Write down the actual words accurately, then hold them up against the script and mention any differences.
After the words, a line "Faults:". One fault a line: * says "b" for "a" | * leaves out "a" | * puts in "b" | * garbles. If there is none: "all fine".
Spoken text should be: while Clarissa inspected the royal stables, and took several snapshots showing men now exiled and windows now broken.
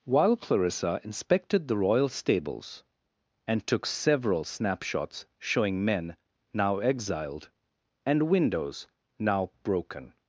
while Clarissa inspected the royal stables, and took several snapshots showing men now exiled and windows now broken.
Faults:
all fine